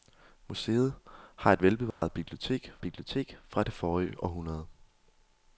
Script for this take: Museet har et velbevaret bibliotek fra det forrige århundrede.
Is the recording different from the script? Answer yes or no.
yes